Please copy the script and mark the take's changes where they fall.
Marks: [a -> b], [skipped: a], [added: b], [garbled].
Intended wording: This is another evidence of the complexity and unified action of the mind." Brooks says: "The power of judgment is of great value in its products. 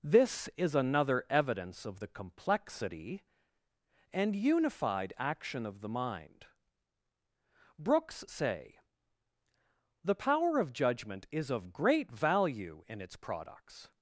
This is another evidence of the complexity and unified action of the mind." Brooks [says: -> say] "The power of judgment is of great value in its products.